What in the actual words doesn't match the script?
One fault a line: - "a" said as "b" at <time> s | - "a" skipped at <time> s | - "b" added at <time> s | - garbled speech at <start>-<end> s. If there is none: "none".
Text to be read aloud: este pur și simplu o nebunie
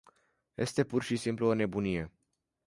none